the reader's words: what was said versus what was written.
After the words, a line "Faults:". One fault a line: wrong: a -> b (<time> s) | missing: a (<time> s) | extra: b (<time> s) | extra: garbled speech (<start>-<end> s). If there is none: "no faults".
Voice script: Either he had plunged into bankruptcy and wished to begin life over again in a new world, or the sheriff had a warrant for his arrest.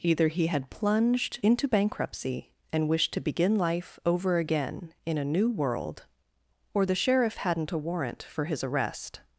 Either he had plunged into bankruptcy and wished to begin life over again in a new world, or the sheriff hadn't a warrant for his arrest.
Faults:
wrong: had -> hadn't (7.4 s)